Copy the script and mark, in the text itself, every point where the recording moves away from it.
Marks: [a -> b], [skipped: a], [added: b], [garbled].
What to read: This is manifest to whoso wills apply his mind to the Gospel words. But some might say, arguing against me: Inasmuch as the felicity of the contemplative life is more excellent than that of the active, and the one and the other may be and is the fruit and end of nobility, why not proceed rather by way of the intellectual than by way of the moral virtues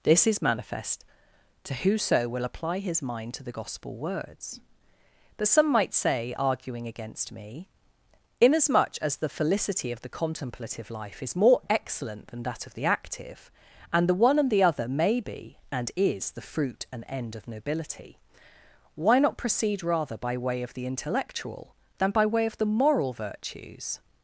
This is manifest to whoso [wills -> will] apply his mind to the Gospel words. But some might say, arguing against me: Inasmuch as the felicity of the contemplative life is more excellent than that of the active, and the one and the other may be and is the fruit and end of nobility, why not proceed rather by way of the intellectual than by way of the moral virtues